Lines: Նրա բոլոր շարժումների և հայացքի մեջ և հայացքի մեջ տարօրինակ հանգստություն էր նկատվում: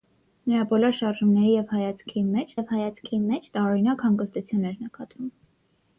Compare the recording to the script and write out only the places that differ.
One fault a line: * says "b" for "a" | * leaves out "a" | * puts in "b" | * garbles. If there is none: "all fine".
all fine